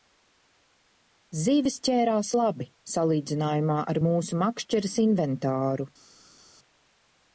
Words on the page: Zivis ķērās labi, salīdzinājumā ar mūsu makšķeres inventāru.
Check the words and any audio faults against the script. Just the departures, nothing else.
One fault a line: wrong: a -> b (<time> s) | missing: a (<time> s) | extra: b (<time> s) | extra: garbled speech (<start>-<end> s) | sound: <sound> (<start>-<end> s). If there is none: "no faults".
no faults